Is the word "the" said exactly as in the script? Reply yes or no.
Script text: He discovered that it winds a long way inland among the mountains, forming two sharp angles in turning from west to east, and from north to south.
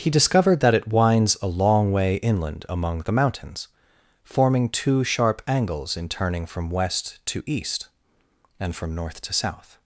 yes